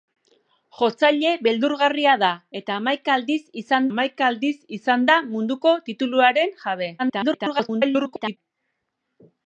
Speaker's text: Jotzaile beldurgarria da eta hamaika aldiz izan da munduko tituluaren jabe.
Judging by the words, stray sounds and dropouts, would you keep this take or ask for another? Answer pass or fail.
fail